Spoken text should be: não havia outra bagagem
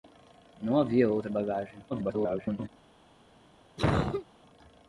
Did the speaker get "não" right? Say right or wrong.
right